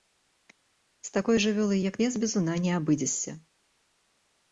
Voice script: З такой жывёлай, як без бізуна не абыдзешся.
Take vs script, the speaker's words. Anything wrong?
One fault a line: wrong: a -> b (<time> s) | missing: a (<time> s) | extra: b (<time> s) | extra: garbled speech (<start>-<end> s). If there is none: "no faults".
no faults